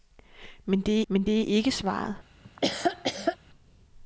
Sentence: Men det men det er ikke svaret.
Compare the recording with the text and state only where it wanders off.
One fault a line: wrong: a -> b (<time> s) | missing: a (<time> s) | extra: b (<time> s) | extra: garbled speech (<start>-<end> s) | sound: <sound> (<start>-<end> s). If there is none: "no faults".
sound: laugh (2.4-3.4 s)